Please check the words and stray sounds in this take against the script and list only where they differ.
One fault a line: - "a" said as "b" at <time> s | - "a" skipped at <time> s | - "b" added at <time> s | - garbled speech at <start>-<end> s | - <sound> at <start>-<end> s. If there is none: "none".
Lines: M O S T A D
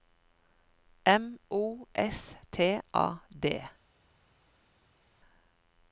none